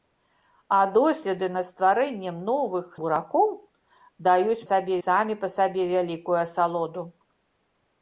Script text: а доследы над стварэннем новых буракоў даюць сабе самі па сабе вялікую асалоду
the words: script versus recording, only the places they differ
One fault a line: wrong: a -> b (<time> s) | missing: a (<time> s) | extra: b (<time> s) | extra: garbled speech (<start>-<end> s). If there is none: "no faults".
no faults